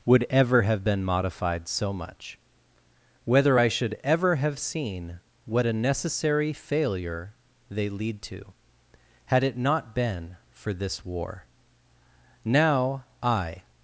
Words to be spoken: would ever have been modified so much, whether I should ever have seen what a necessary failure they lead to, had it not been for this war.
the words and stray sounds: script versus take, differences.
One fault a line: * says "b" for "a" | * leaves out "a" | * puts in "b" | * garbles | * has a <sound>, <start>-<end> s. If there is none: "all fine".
* puts in "Now I"